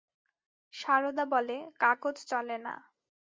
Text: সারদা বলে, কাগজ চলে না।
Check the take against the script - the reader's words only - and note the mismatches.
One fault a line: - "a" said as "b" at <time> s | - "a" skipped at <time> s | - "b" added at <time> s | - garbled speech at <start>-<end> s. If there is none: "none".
none